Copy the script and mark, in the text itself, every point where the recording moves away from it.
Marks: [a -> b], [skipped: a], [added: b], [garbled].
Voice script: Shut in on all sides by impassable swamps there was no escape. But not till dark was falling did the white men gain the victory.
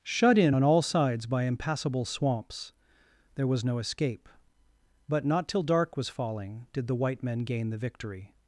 Shut in on all sides by impassable swamps there was no escape. But not till dark was falling did the white men gain the victory.